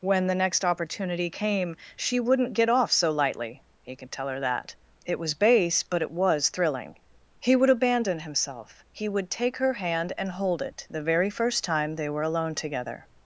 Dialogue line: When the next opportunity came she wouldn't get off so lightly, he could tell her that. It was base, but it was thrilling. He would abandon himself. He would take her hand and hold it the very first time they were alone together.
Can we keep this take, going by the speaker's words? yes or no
yes